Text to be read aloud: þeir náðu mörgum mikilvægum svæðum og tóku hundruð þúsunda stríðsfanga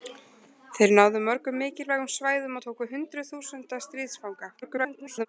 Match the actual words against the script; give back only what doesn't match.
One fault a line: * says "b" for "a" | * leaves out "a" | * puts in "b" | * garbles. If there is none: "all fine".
* garbles